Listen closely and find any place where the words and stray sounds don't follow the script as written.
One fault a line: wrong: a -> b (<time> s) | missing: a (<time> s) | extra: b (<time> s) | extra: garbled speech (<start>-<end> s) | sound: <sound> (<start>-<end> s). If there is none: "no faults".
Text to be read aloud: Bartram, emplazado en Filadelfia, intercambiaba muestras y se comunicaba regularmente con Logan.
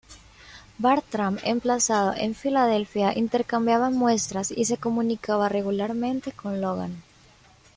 no faults